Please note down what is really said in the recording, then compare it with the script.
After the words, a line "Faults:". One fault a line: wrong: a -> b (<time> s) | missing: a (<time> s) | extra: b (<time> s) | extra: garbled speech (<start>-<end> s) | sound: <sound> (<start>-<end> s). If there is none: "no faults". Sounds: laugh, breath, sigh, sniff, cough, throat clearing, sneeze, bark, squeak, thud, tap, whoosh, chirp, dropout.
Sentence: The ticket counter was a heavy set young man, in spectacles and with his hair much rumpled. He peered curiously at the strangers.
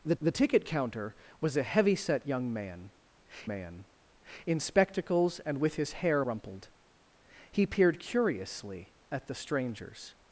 The the ticket counter was a heavy set young man man, in spectacles and with his hair rumpled. He peered curiously at the strangers.
Faults:
extra: the (0.2 s)
extra: man (3.4 s)
missing: much (6.2 s)